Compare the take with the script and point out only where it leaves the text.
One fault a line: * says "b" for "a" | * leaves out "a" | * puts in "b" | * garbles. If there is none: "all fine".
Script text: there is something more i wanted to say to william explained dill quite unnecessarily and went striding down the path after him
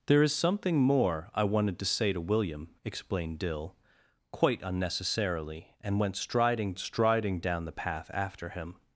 * puts in "striding"